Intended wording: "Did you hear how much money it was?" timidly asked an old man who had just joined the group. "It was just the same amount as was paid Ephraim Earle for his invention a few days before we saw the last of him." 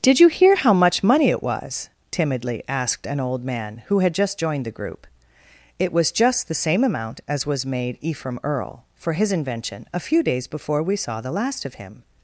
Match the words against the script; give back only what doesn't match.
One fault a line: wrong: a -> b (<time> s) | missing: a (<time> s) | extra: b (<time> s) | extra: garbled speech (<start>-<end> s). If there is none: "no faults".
wrong: paid -> made (7.7 s)